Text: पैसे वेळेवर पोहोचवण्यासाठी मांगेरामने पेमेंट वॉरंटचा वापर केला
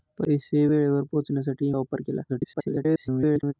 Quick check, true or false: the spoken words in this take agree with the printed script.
false